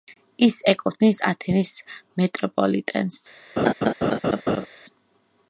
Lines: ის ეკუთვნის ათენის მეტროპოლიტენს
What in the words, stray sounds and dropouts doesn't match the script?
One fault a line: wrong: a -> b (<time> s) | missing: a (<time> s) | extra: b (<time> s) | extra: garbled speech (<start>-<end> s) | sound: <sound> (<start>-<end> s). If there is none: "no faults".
sound: laugh (3.6-4.7 s)